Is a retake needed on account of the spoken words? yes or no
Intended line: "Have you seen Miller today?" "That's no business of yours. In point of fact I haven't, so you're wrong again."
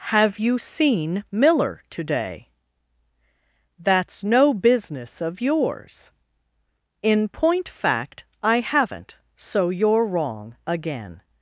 yes